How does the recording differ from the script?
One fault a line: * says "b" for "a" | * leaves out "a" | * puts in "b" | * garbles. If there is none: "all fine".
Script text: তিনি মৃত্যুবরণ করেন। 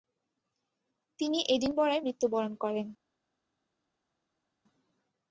* puts in "এডিনবরায়"